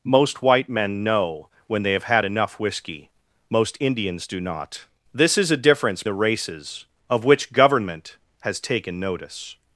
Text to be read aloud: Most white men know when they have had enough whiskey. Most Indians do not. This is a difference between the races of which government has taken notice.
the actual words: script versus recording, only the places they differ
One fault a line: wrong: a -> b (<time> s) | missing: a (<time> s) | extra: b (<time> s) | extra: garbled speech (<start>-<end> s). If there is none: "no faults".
missing: between (6.0 s)